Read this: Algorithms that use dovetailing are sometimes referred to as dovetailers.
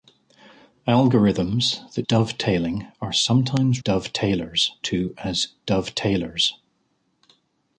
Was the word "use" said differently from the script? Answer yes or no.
yes